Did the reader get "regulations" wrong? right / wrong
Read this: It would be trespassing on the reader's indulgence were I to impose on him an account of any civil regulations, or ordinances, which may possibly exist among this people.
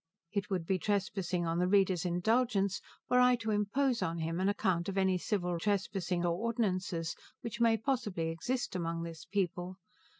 wrong